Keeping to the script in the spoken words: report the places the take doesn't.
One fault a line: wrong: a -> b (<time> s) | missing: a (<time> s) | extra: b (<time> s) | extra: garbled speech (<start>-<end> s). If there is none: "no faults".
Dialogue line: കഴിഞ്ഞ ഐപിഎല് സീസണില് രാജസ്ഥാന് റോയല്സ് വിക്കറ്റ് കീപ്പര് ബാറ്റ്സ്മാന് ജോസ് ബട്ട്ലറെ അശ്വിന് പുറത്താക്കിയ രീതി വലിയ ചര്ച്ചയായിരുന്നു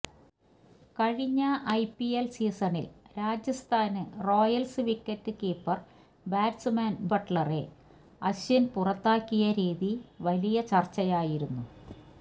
missing: ജോസ് (7.1 s)